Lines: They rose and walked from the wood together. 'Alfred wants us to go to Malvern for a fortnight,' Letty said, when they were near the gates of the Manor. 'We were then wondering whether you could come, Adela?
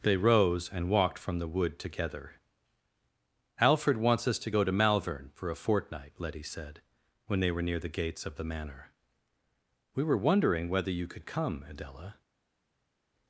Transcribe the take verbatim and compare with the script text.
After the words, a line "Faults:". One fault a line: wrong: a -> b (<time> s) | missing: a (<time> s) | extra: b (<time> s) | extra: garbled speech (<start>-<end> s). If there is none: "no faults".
They rose and walked from the wood together. 'Alfred wants us to go to Malvern for a fortnight,' Letty said, when they were near the gates of the Manor. 'We were wondering whether you could come, Adela?
Faults:
missing: then (10.2 s)